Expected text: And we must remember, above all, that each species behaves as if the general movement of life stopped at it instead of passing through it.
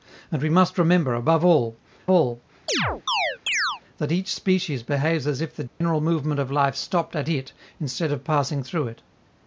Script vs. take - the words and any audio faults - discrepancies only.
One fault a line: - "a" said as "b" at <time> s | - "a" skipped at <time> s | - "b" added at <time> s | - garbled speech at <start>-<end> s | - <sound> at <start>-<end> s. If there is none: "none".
- "all" added at 2.1 s
- chirp at 2.7-3.8 s
- dropout at 5.7-5.8 s